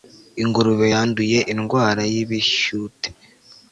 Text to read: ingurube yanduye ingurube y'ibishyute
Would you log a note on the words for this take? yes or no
yes